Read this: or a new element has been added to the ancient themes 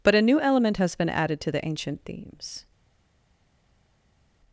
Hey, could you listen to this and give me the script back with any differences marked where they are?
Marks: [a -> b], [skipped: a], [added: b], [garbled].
[or -> but] a new element has been added to the ancient themes